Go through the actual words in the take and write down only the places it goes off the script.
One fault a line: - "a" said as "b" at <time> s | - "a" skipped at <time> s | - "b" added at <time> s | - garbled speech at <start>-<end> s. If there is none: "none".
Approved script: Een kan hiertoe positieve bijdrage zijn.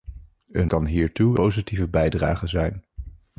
none